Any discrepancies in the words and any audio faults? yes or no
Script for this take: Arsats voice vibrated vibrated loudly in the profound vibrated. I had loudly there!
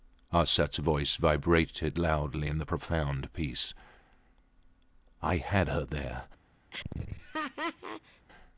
yes